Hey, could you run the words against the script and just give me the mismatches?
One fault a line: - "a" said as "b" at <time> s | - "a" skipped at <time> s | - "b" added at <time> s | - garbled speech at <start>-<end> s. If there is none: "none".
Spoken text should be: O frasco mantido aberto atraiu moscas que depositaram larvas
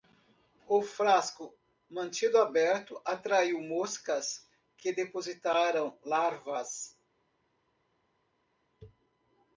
none